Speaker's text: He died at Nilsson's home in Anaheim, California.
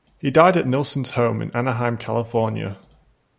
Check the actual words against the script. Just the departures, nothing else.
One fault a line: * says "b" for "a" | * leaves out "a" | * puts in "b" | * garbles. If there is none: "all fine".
all fine